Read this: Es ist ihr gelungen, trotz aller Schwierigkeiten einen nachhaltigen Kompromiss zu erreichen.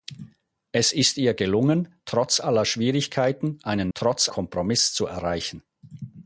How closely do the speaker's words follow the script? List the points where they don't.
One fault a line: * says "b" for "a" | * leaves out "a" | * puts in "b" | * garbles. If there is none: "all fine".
* says "trotz" for "nachhaltigen"